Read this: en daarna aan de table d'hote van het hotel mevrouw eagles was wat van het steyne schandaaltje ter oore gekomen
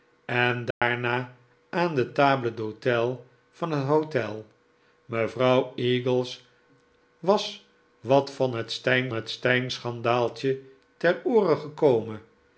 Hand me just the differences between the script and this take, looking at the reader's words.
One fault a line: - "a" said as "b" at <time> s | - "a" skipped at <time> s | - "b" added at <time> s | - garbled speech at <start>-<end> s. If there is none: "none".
- "het steyne" added at 9.1 s